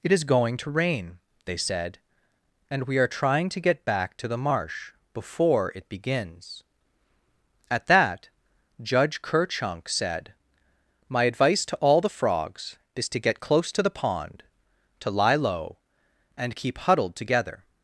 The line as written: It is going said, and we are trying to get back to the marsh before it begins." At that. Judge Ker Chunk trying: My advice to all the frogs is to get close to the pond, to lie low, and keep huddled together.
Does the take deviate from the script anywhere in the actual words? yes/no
yes